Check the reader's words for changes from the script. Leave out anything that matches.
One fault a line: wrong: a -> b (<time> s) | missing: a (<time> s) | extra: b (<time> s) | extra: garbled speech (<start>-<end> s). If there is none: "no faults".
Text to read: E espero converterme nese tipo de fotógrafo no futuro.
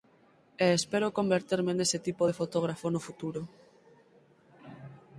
no faults